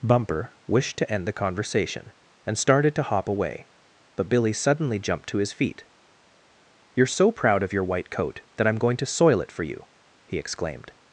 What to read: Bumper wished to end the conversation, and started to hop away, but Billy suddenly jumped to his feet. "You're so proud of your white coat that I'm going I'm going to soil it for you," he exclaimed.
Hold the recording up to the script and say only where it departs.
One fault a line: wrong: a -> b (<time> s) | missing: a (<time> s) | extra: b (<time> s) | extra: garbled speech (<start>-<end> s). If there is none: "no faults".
missing: I'm going (8.9 s)